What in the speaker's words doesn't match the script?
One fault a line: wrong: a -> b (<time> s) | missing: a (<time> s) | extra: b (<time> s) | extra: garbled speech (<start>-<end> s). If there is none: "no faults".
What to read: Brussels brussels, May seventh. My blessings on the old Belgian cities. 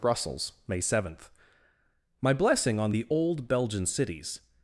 missing: brussels (0.5 s)
wrong: blessings -> blessing (2.3 s)